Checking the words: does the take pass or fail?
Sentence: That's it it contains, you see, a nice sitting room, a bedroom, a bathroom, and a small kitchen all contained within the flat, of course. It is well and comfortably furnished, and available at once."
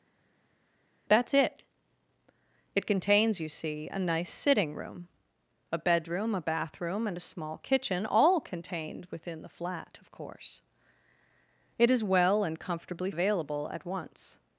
fail